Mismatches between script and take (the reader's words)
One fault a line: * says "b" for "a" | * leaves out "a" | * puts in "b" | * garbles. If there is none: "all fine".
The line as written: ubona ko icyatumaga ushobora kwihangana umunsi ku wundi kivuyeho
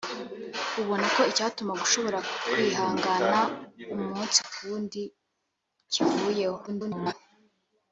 * garbles